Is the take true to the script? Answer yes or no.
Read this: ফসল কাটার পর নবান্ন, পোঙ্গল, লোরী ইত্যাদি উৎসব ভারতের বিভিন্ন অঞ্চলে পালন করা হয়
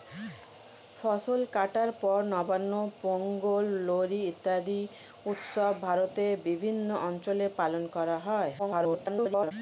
no